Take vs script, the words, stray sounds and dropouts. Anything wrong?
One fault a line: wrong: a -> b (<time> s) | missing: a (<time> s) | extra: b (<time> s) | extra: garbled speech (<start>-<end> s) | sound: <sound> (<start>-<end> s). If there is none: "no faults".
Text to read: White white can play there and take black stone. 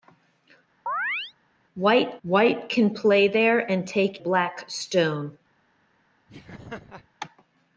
sound: chirp (0.9-1.3 s)
sound: laugh (6.3-7.1 s)